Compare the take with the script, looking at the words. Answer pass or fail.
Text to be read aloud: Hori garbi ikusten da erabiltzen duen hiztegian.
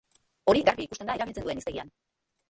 pass